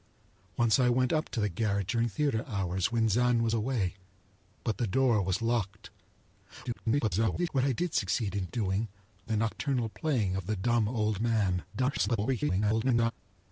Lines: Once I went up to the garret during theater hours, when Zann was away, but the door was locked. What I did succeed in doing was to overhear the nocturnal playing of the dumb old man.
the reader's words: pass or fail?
fail